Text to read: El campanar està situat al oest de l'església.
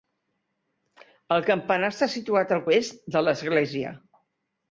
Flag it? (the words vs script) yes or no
no